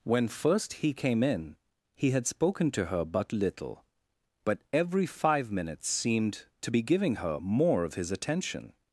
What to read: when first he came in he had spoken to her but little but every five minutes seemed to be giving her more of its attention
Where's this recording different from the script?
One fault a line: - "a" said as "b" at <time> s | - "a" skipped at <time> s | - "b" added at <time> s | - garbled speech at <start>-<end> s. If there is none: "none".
- "its" said as "his" at 7.9 s